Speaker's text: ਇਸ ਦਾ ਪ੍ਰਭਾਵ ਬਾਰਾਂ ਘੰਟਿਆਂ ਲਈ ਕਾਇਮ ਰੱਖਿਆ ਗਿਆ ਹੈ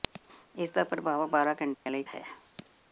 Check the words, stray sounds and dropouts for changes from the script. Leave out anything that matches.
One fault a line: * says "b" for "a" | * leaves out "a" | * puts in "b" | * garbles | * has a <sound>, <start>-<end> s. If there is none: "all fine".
* has a dropout, 1.7-1.9 s
* leaves out "ਕਾਇਮ ਰੱਖਿਆ ਗਿਆ"